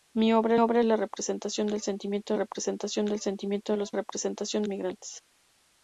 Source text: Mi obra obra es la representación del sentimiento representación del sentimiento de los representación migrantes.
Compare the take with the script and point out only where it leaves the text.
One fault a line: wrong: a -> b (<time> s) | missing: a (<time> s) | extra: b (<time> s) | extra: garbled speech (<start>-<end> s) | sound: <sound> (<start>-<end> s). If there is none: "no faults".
no faults